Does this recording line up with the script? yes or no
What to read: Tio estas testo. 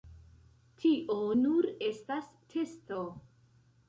no